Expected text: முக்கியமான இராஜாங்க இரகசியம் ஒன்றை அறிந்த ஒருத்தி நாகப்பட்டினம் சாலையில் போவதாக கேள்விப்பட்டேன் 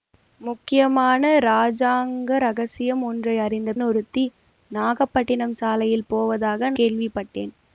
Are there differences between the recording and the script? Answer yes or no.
no